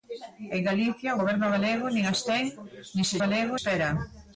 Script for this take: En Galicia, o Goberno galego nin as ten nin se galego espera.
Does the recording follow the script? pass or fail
pass